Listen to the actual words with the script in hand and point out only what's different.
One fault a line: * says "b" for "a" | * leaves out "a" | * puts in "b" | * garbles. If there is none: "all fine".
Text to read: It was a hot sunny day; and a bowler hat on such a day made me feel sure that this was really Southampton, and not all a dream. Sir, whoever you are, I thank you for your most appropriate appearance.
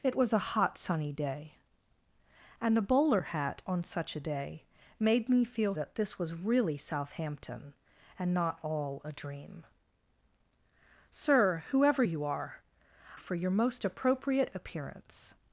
* leaves out "sure"
* leaves out "I thank you"